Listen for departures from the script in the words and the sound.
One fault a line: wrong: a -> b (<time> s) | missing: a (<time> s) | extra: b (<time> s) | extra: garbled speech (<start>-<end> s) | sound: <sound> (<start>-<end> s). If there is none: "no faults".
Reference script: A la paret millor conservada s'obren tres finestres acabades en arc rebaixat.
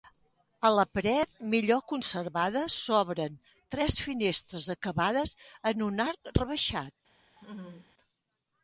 extra: un (5.9 s)
sound: laugh (7.4-7.9 s)